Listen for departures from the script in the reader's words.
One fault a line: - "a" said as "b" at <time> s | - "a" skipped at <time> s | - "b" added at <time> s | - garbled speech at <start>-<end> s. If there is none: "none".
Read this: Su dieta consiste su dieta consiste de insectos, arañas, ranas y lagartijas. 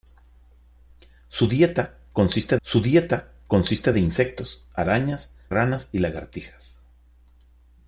none